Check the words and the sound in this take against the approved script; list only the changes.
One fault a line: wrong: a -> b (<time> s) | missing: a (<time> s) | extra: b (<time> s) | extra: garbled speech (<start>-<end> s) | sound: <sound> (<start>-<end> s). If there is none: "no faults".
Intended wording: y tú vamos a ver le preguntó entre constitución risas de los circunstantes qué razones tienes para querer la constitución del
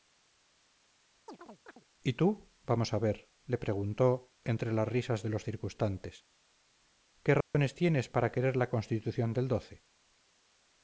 sound: chirp (1.3-1.8 s)
wrong: constitución -> las (4.7 s)
sound: dropout (7.4-7.5 s)